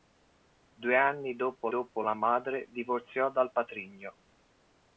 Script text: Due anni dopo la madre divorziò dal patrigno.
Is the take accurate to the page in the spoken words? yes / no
no